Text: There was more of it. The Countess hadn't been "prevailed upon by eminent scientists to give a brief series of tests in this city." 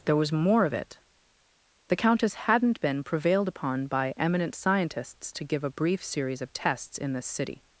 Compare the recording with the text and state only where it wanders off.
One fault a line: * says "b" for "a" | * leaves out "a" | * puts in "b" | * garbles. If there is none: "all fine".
all fine